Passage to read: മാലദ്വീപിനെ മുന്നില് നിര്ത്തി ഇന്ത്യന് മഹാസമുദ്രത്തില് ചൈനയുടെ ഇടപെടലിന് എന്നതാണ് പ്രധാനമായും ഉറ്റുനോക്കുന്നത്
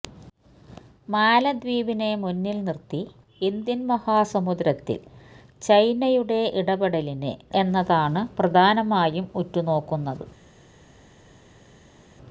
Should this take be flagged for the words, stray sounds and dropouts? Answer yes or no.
no